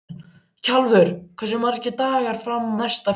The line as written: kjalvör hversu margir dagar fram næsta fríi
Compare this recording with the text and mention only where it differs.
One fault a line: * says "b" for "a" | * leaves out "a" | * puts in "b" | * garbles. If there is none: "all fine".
all fine